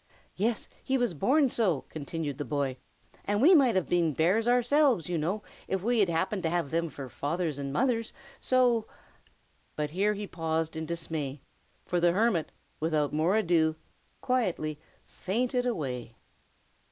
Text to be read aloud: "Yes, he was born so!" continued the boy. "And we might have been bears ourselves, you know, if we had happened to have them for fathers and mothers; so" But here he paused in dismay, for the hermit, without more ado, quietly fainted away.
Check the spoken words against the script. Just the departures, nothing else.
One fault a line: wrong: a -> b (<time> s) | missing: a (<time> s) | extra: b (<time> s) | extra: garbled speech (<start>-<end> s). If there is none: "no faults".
no faults